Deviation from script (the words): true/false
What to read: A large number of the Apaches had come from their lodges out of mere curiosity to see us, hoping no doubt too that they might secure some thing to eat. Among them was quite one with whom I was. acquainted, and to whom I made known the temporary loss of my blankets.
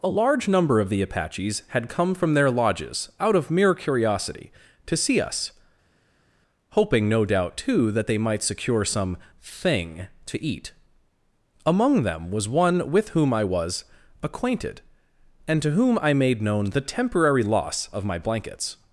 true